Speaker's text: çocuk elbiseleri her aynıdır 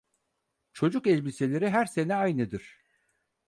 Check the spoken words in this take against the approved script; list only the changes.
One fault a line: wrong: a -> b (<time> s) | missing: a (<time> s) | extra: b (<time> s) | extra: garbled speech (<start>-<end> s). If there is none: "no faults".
extra: sene (1.8 s)